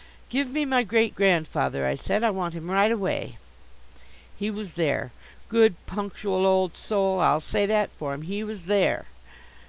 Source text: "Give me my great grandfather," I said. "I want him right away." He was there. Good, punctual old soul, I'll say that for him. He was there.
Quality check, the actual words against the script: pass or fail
pass